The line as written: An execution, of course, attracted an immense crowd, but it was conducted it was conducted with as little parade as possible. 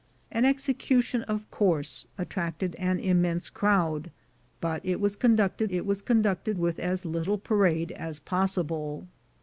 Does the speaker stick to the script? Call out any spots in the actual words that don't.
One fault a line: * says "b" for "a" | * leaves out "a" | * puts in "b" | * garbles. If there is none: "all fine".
all fine